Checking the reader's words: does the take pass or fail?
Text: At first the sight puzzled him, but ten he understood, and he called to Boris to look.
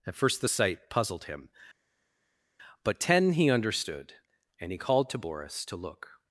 pass